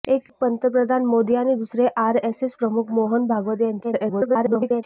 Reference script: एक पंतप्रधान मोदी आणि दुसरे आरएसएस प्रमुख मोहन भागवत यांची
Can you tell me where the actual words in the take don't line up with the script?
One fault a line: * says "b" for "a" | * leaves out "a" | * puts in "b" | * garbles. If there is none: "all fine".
* garbles